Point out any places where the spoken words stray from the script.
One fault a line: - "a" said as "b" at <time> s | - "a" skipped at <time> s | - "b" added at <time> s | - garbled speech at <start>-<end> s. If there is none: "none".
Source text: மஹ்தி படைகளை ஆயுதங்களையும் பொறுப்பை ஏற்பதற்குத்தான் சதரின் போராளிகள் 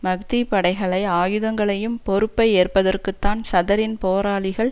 none